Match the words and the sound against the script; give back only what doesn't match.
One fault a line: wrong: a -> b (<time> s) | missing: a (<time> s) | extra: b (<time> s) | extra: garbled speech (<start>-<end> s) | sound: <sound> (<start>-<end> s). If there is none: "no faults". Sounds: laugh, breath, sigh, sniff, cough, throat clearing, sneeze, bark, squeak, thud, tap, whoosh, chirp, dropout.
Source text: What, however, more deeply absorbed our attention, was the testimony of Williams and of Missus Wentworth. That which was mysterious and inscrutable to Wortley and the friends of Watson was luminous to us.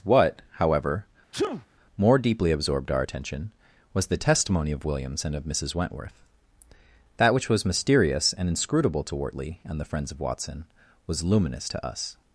sound: sneeze (1.3-1.7 s)